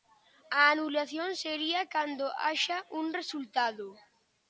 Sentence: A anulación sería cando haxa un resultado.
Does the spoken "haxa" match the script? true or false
true